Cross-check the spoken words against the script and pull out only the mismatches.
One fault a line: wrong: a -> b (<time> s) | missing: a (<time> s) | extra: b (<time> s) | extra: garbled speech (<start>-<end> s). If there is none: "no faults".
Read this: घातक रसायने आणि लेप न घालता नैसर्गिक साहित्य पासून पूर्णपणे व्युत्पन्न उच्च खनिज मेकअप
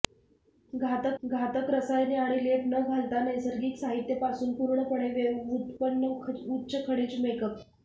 extra: घातक (1.2 s)